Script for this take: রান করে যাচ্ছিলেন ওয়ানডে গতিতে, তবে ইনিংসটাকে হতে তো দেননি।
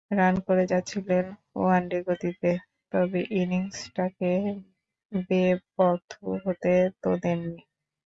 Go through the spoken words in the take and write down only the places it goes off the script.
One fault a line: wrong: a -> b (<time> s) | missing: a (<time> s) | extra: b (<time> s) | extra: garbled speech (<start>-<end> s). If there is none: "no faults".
extra: বেপথু (5.3 s)